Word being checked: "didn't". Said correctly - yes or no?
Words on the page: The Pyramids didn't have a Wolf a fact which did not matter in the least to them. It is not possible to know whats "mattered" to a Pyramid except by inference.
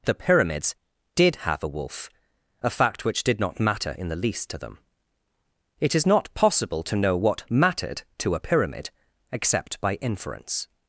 no